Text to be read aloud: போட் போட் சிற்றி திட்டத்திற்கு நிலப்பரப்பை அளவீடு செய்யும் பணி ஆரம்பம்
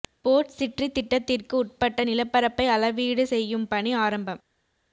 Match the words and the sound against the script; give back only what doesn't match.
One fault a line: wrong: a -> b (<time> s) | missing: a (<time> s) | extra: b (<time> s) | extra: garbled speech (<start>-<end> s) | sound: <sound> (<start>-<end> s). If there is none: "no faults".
missing: போட் (0.5 s)
extra: உட்பட்ட (1.6 s)